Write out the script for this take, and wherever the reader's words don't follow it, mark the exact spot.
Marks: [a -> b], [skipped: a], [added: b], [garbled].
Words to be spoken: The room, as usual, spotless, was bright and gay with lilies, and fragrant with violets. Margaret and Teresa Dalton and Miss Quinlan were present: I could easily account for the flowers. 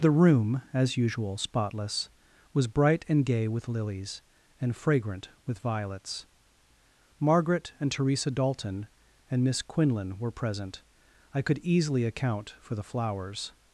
The room, as usual, spotless, was bright and gay with lilies, and fragrant with violets. Margaret and Teresa Dalton and Miss Quinlan were present: I could easily account for the flowers.